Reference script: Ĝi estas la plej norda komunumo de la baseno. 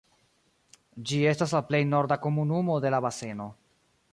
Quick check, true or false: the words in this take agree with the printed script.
true